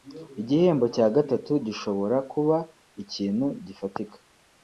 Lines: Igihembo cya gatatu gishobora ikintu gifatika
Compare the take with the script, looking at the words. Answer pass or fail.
fail